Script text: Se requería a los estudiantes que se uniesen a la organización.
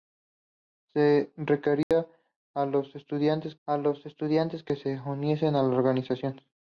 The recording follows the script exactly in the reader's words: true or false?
false